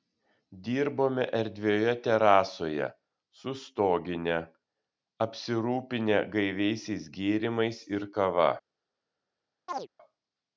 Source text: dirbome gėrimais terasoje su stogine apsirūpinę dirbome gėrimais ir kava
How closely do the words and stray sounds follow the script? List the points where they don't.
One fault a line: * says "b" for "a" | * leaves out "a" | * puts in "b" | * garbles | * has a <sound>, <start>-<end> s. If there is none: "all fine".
* says "erdvioje" for "gėrimais"
* says "gaiviaisiais" for "dirbome"
* has a chirp, 9.7-9.9 s